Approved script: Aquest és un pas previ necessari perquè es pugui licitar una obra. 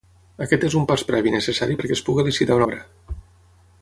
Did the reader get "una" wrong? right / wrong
wrong